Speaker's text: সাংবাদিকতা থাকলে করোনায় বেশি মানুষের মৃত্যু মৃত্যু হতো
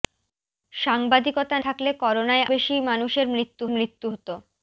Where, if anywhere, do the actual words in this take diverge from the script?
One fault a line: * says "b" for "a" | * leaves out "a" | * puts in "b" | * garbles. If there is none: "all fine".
all fine